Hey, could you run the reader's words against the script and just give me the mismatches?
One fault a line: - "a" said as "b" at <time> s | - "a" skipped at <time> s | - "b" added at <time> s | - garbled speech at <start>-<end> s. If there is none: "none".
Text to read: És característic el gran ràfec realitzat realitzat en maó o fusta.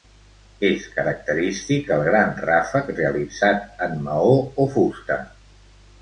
- "realitzat" skipped at 3.8 s